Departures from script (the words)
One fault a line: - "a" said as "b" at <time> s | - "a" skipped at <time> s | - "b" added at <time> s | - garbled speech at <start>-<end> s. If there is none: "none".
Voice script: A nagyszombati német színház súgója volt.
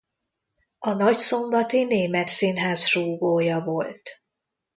none